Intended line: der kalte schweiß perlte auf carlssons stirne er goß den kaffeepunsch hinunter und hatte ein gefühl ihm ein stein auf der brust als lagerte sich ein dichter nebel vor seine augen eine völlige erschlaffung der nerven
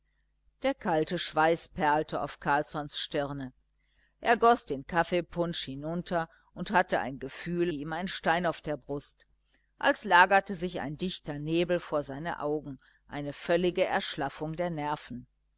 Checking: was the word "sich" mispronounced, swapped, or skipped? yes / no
no